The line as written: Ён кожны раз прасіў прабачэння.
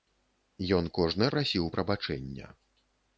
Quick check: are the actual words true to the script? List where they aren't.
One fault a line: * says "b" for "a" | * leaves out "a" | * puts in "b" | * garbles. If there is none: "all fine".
* leaves out "раз"